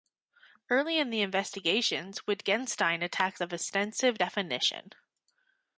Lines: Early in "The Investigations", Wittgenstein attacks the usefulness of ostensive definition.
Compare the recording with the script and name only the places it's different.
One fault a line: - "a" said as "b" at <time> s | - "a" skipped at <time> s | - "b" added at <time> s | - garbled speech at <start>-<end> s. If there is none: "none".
- "the usefulness" skipped at 3.4 s